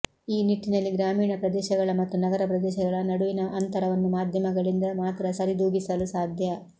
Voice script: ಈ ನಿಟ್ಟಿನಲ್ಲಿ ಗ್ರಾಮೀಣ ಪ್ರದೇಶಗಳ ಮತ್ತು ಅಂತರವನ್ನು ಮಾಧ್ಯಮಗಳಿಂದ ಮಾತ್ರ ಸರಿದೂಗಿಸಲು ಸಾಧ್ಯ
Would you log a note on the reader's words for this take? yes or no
yes